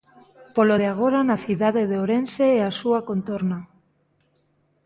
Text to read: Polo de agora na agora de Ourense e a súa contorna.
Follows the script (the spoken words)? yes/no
no